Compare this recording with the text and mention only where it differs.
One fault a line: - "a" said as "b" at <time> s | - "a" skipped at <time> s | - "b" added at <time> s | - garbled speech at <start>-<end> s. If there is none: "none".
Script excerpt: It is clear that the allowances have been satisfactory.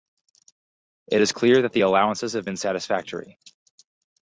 none